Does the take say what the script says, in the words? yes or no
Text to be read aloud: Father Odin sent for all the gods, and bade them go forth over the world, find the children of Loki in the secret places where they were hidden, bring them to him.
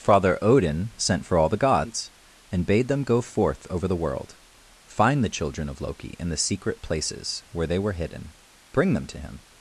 yes